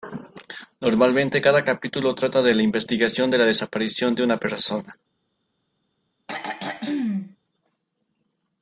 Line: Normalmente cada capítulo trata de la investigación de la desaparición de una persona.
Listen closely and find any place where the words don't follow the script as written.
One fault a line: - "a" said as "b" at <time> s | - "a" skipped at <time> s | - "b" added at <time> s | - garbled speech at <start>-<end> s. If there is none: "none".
none